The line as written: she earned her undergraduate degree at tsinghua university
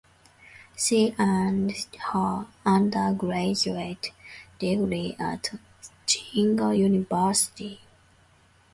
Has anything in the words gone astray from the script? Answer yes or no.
no